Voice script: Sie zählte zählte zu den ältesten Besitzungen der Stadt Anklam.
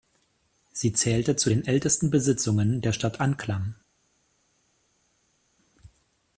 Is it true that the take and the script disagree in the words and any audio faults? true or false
true